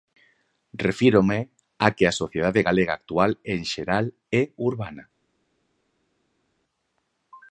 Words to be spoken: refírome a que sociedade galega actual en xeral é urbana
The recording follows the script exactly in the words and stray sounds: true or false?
false